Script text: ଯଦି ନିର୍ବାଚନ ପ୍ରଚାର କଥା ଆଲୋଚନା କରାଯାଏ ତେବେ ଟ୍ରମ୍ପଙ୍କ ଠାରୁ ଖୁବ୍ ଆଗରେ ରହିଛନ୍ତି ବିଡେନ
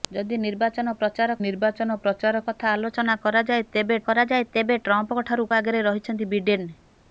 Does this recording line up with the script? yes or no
no